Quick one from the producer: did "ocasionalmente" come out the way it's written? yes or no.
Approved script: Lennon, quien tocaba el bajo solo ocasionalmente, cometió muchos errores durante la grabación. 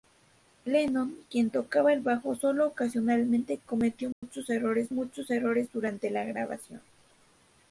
yes